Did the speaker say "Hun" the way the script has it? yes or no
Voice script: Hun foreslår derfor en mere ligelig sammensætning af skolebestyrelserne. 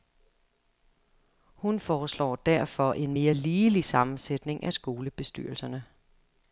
yes